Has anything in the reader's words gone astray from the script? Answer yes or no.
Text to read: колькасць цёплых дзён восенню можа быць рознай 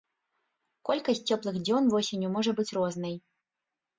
no